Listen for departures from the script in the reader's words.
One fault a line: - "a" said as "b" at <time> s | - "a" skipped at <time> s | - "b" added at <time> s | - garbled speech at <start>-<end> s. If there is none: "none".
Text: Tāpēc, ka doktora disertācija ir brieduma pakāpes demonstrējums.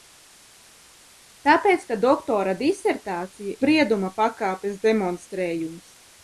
- "ir" skipped at 3.6 s